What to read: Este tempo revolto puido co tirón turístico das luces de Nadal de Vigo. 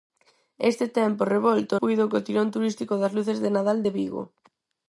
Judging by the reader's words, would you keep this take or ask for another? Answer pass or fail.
pass